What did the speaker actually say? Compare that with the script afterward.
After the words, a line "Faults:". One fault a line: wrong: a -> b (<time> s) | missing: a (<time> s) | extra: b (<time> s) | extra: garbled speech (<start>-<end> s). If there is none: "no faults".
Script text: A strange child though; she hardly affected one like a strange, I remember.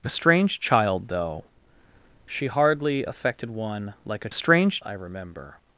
A strange child though; she hardly affected one like a strange, I remember.
Faults:
no faults